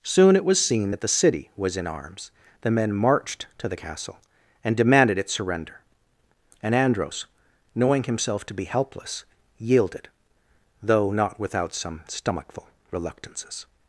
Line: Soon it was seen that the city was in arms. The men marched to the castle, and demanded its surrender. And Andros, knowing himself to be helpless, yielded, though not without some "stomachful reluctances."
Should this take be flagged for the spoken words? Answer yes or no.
no